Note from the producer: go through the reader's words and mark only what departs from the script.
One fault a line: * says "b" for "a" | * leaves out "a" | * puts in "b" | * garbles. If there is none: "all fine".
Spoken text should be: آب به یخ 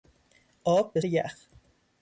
all fine